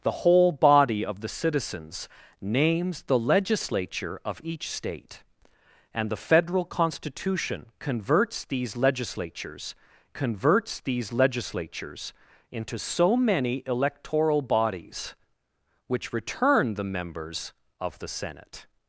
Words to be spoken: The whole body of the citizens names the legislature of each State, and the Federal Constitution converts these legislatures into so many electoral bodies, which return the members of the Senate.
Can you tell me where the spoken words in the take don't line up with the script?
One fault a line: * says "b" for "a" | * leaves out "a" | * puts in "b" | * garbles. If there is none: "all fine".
* puts in "converts these legislatures"